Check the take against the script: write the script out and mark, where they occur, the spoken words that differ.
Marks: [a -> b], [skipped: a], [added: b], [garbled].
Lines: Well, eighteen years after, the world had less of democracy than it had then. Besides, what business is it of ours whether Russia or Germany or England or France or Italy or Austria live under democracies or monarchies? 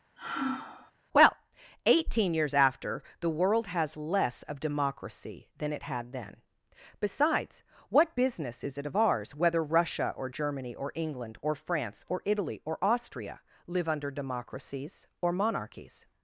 Well, eighteen years after, the world [had -> has] less of democracy than it had then. Besides, what business is it of ours whether Russia or Germany or England or France or Italy or Austria live under democracies or monarchies?